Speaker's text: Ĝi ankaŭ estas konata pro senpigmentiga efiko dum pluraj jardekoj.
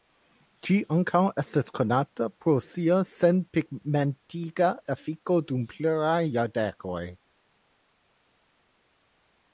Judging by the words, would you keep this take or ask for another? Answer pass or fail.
fail